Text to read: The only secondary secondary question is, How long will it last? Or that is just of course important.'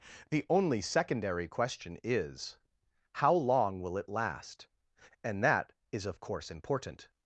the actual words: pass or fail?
fail